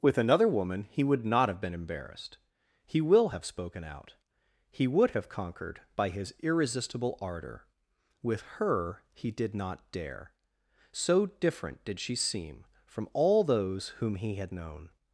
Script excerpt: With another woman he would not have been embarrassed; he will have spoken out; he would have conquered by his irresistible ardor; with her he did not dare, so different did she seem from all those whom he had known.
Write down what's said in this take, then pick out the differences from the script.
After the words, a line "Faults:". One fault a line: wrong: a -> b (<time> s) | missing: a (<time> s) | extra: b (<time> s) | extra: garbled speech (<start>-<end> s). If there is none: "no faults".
With another woman he would not have been embarrassed; he will have spoken out; he would have conquered by his irresistible ardor; with her he did not dare, so different did she seem from all those whom he had known.
Faults:
no faults